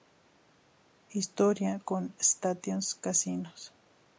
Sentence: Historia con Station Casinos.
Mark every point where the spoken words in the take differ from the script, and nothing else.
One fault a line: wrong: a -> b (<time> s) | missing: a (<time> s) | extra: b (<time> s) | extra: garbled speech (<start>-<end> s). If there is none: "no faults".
no faults